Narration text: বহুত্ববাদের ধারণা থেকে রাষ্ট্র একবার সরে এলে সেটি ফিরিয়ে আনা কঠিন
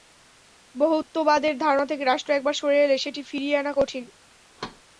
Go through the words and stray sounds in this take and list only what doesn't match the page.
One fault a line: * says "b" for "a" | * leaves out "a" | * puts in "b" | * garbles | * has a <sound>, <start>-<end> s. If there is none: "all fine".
* has a thud, 4.6-4.8 s